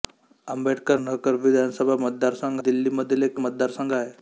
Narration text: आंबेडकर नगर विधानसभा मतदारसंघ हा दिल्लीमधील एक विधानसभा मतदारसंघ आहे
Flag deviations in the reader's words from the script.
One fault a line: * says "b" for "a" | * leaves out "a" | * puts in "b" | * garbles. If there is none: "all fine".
* leaves out "हा"
* leaves out "विधानसभा"